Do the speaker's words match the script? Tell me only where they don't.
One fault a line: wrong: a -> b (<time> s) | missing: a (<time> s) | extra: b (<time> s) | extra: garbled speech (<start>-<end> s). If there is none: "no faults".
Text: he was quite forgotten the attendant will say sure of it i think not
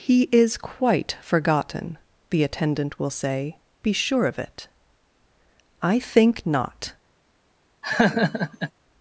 wrong: was -> is (0.3 s)
extra: be (3.8 s)